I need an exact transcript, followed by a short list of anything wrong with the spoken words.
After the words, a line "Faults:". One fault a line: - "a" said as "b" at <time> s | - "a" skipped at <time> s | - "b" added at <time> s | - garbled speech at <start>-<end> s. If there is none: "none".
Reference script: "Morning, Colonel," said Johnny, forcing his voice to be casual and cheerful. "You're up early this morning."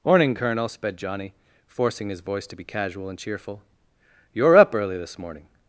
"Morning, Colonel," sped Johnny, forcing his voice to be casual and cheerful. "You're up early this morning."
Faults:
- "said" said as "sped" at 0.7 s